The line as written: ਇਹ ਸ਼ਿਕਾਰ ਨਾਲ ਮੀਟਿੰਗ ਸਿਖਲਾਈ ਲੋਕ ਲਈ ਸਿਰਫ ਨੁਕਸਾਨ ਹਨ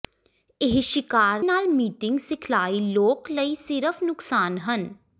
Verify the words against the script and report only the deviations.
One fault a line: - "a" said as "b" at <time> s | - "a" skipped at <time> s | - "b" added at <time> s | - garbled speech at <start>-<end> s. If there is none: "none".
none